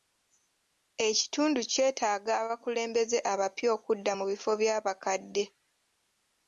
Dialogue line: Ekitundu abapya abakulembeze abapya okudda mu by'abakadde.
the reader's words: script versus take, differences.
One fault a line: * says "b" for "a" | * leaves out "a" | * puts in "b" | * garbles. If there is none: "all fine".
* says "kyetaaga" for "abapya"
* puts in "bifo"